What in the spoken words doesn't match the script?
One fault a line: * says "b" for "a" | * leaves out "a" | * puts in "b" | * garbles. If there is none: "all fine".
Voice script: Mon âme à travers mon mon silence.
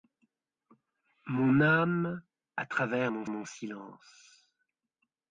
all fine